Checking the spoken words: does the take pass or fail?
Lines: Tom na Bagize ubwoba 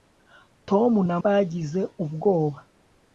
pass